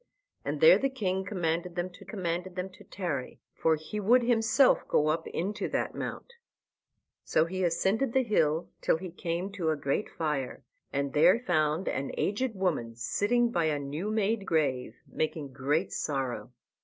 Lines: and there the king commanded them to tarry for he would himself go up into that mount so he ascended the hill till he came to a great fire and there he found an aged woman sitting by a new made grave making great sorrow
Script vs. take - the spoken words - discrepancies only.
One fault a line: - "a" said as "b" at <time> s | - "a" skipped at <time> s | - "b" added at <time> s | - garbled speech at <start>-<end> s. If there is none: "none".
- "commanded them to" added at 2.1 s
- "he" skipped at 11.4 s